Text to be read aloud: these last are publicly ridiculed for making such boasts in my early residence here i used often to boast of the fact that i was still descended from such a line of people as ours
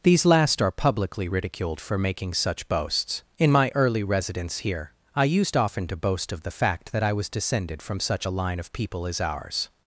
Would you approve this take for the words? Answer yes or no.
no